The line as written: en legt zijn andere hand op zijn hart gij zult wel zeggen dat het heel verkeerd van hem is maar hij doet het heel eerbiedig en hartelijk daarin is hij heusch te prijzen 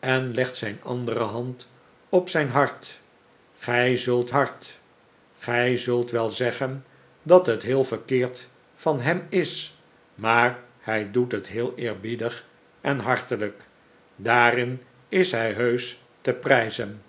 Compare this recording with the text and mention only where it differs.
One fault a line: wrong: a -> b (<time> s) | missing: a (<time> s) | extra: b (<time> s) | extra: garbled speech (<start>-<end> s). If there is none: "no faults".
extra: hart gij zult (4.3 s)